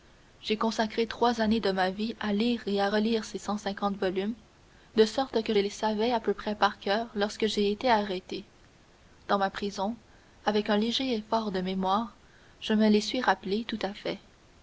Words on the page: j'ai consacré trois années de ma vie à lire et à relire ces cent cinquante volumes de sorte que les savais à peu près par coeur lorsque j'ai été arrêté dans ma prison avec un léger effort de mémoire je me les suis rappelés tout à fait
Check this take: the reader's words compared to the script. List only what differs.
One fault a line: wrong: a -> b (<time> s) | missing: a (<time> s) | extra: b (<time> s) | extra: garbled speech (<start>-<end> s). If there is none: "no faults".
no faults